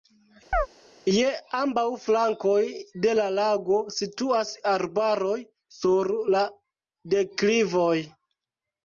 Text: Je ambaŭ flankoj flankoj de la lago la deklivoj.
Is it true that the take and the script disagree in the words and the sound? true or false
true